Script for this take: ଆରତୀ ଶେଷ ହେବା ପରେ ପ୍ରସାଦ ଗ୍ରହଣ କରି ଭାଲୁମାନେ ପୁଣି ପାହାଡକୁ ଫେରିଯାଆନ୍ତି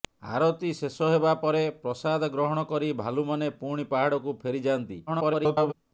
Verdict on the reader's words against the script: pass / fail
fail